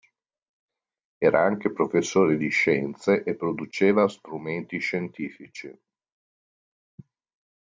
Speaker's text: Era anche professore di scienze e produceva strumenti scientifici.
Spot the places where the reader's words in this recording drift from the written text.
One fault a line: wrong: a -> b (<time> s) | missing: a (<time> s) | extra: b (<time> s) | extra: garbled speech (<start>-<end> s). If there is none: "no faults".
no faults